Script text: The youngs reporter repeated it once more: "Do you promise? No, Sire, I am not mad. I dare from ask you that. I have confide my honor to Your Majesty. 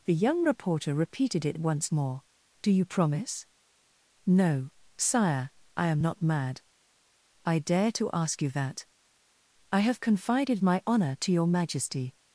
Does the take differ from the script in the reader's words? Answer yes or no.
yes